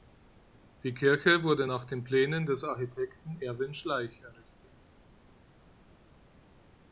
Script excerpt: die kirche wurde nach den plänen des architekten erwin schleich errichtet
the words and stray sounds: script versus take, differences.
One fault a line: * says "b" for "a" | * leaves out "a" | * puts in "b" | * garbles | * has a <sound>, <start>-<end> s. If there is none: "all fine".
all fine